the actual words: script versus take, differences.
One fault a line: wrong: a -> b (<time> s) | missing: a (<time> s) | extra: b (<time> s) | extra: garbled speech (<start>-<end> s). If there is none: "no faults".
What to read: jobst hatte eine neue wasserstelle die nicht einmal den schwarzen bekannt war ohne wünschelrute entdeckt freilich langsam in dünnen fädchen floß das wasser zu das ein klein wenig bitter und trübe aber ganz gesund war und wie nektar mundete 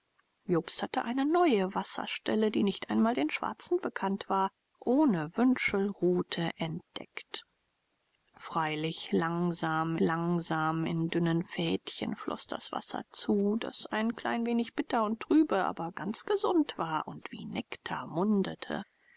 extra: langsam (10.0 s)